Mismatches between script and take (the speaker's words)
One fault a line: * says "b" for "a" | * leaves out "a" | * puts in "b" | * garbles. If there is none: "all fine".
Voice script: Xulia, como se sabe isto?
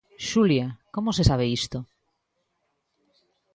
all fine